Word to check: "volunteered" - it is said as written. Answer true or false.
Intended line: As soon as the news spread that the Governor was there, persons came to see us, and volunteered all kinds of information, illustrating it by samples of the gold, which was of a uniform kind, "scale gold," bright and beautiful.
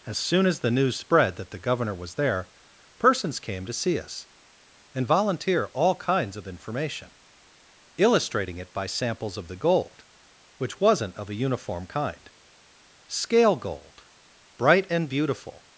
false